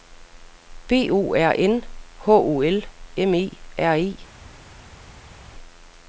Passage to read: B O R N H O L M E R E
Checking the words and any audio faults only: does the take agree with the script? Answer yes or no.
yes